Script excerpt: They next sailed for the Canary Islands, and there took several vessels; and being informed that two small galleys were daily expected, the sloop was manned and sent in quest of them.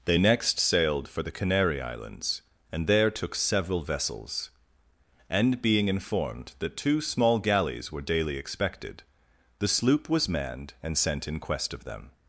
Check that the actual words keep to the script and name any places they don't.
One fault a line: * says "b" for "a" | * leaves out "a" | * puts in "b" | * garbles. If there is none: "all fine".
all fine